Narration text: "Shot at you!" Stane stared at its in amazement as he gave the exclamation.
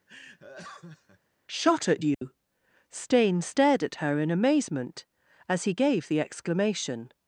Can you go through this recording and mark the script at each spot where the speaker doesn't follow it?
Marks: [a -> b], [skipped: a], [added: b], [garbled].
"Shot at you!" Stane stared at [its -> her] in amazement as he gave the exclamation.